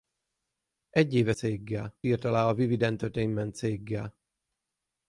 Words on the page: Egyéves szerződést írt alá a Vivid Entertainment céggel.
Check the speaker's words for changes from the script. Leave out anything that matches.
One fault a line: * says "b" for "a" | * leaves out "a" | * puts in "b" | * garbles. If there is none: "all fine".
* says "céggel" for "szerződést"